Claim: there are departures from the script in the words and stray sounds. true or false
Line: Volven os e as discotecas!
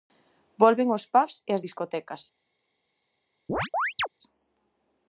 true